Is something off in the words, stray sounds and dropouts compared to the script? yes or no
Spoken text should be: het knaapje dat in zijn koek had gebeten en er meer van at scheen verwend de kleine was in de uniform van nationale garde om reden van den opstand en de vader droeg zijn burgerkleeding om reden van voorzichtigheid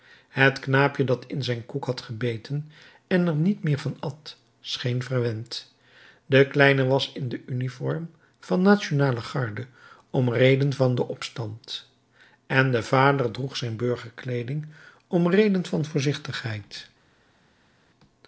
yes